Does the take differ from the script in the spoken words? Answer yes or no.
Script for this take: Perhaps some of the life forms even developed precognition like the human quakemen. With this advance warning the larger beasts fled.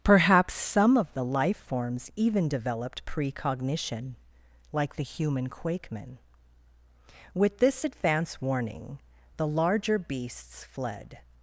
no